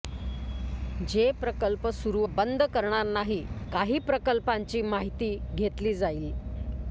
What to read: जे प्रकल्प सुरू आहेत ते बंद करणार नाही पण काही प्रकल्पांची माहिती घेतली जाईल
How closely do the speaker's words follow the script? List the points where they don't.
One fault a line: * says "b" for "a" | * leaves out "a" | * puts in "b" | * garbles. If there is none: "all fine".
* leaves out "आहेत ते"
* leaves out "पण"